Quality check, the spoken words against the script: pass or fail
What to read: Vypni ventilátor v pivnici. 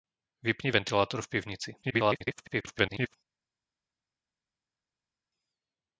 fail